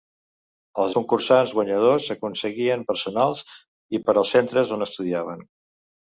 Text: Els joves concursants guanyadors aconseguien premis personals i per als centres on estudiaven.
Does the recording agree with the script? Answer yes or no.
no